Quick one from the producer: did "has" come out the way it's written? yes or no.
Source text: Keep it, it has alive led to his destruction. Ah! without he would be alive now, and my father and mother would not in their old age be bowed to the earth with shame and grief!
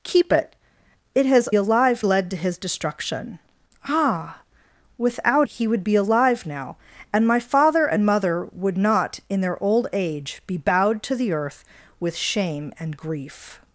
yes